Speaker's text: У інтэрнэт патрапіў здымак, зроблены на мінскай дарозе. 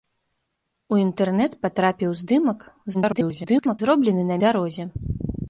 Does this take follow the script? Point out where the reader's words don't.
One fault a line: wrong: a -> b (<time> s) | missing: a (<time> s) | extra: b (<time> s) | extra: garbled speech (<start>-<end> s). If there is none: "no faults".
extra: garbled speech (2.9-3.8 s)
missing: мінскай (4.4 s)